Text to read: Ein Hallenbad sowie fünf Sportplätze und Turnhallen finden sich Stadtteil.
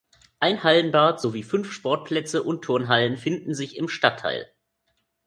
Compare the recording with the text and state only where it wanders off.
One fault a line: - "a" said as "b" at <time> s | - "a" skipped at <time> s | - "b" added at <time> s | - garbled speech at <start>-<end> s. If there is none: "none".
- "im" added at 3.8 s